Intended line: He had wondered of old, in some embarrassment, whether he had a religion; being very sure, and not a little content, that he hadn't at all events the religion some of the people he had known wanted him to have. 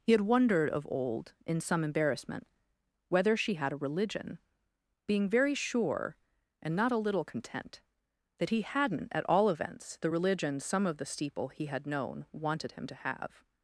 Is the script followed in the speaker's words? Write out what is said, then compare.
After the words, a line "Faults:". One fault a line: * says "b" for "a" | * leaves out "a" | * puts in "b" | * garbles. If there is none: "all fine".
He had wondered of old, in some embarrassment, whether she had a religion; being very sure, and not a little content, that he hadn't at all events the religion some of the steeple he had known wanted him to have.
Faults:
* says "she" for "he"
* says "steeple" for "people"